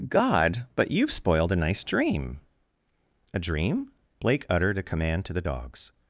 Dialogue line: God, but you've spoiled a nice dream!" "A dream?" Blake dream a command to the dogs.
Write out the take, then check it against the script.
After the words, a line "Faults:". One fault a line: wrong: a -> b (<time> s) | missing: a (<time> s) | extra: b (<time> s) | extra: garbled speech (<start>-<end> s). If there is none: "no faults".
God, but you've spoiled a nice dream!" "A dream?" Blake uttered a command to the dogs.
Faults:
wrong: dream -> uttered (4.5 s)